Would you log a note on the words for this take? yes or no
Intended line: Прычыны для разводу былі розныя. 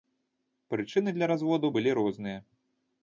no